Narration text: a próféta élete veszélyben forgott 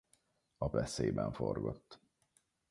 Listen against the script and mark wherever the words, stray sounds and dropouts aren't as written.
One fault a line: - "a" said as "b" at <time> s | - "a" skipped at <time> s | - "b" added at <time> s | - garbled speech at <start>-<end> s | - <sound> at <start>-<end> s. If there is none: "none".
- "próféta élete" skipped at 0.7 s